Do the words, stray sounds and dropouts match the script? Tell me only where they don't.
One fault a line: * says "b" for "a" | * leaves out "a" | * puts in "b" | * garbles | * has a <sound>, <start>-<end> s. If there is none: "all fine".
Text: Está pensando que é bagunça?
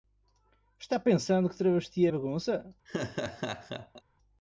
* puts in "travesti"
* has a laugh, 2.9-4.0 s